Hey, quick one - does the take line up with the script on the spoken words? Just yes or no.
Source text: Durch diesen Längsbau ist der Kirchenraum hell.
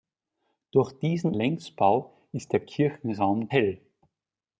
yes